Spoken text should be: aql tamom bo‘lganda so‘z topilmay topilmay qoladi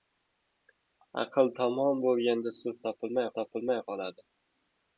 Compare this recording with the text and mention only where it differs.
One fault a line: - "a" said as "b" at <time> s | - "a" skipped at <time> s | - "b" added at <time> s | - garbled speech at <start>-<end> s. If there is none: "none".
none